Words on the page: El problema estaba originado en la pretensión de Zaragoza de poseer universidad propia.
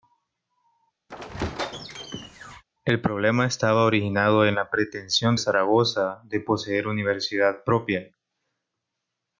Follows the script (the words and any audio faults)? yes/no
no